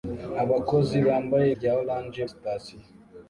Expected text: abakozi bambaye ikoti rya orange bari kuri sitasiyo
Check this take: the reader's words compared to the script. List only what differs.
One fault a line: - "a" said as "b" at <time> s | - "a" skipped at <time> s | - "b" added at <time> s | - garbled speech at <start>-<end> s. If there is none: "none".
- "ikoti" skipped at 1.5 s
- "bari kuri" skipped at 2.2 s